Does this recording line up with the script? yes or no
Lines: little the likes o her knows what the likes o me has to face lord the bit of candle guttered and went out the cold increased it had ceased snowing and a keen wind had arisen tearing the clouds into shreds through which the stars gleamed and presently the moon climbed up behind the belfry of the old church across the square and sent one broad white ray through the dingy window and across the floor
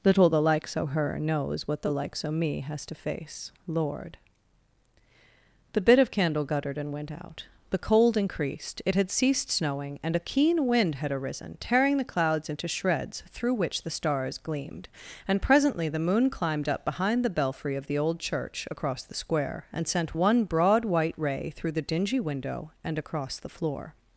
yes